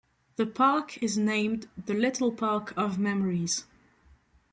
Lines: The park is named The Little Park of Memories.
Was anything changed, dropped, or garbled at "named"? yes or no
no